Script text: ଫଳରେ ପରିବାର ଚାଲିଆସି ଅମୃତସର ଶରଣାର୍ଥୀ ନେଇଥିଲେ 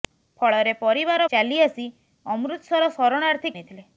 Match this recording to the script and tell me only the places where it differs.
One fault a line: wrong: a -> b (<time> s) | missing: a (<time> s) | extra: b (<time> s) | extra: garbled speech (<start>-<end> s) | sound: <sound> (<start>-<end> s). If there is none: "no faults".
no faults